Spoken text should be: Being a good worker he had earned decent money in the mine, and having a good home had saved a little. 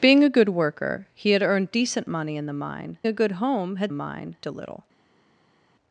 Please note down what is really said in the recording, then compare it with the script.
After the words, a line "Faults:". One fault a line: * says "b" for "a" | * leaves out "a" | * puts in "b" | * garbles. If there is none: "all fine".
Being a good worker he had earned decent money in the mine, a good home had mine a little.
Faults:
* leaves out "and having"
* says "mine" for "saved"